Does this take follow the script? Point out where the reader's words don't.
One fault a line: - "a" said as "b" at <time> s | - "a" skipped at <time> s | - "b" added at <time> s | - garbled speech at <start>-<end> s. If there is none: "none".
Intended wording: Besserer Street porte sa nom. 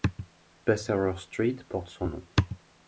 - "sa" said as "son" at 1.9 s